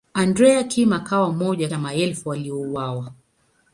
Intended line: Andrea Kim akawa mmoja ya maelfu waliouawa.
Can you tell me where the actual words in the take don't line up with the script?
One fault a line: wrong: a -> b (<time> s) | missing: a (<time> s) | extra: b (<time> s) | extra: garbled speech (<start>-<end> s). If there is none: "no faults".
no faults